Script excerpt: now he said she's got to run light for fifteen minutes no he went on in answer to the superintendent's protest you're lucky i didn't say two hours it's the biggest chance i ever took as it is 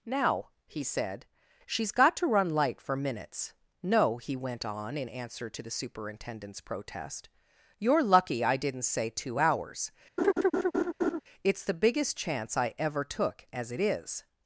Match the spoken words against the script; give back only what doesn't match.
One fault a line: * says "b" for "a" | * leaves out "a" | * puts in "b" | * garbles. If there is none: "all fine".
* leaves out "fifteen"